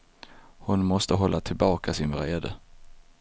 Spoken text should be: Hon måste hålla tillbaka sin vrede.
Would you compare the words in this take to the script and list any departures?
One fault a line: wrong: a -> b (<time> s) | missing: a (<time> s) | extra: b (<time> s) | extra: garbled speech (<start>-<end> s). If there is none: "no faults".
no faults